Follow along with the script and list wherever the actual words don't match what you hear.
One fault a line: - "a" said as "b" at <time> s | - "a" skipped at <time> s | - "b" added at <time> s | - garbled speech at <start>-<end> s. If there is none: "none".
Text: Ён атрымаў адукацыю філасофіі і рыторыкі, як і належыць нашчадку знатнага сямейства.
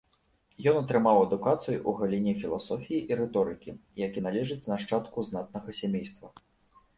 - "ў галіне" added at 1.8 s